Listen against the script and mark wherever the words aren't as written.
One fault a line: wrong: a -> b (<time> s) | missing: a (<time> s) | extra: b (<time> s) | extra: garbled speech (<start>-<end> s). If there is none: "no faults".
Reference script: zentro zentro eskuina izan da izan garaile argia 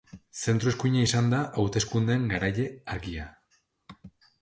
missing: zentro (0.7 s)
wrong: izan -> hauteskundeen (1.6 s)